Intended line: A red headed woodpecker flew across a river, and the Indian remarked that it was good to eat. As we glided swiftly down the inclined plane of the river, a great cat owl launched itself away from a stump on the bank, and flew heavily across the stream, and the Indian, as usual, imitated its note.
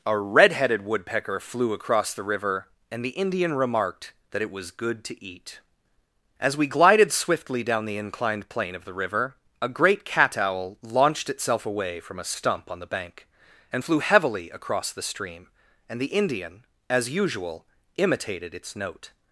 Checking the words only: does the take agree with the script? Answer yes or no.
no